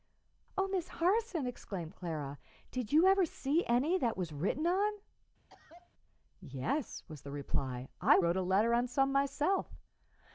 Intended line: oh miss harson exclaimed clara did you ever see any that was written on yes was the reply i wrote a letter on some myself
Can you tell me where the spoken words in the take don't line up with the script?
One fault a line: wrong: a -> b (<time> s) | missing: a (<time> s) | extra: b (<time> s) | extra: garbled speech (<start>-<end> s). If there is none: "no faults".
no faults